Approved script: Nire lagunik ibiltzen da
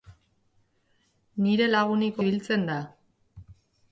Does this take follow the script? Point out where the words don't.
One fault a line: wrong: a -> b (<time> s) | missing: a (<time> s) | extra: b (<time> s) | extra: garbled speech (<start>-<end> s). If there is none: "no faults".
no faults